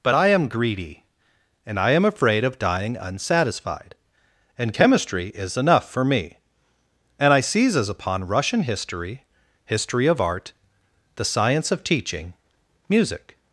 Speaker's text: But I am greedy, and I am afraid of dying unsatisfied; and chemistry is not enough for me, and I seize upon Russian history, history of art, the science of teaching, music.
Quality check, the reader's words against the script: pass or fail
fail